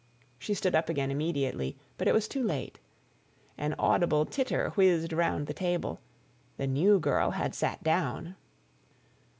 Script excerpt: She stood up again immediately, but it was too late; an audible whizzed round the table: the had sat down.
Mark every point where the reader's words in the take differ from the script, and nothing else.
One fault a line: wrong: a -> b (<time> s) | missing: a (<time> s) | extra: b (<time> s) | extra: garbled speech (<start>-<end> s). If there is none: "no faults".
extra: titter (4.2 s)
extra: new girl (6.7 s)